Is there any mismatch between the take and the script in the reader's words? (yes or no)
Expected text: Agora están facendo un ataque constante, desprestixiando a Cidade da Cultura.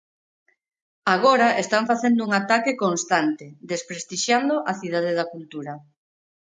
no